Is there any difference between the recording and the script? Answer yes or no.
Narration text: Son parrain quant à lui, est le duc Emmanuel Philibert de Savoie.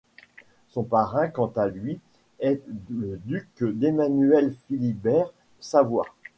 yes